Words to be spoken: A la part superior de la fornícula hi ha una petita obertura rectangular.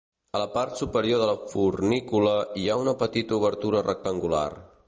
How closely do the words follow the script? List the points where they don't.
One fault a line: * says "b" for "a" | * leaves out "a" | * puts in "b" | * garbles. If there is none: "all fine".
all fine